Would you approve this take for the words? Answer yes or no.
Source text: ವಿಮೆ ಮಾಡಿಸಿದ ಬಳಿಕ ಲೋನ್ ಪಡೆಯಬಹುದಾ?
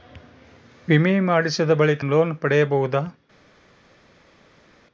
yes